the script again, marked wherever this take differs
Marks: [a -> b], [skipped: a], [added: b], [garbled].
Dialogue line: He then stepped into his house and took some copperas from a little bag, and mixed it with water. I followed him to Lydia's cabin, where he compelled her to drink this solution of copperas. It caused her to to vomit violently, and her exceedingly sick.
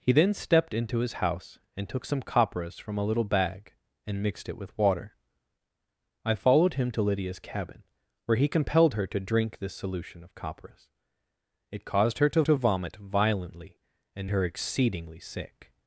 He then stepped into his house and took some copperas from a little bag, and mixed it with water. I followed him to Lydia's cabin, where he compelled her to drink this solution of copperas. It caused her to to vomit violently, and her exceedingly sick.